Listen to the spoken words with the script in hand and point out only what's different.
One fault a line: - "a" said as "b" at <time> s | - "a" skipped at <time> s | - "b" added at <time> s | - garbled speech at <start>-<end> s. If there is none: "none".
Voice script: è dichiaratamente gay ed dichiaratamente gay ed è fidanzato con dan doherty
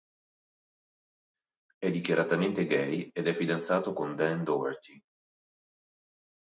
- "dichiaratamente gay ed" skipped at 3.3 s